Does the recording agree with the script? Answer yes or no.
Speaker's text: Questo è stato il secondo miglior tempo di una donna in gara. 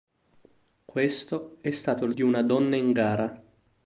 no